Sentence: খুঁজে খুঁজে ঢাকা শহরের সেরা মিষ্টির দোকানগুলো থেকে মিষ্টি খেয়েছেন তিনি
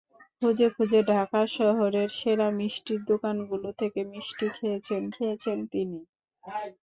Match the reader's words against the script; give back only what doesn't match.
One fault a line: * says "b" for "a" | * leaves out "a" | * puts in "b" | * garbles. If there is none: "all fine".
* puts in "খেয়েছেন"